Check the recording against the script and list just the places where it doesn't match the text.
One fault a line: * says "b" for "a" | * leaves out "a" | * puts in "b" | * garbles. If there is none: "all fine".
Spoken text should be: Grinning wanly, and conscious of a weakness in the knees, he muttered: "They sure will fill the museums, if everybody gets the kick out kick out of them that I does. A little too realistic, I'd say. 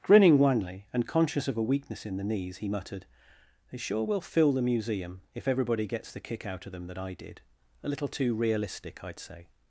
* says "museum" for "museums"
* leaves out "kick out"
* says "did" for "does"